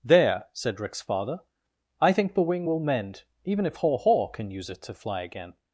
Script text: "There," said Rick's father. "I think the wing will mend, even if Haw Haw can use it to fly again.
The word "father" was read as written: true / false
true